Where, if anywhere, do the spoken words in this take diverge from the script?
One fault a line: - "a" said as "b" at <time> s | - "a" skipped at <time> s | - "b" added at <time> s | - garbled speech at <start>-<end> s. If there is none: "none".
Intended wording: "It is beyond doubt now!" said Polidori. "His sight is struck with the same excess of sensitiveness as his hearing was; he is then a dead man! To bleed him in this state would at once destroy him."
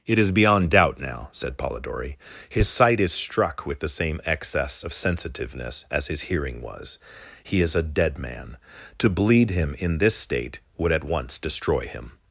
- "then" skipped at 7.7 s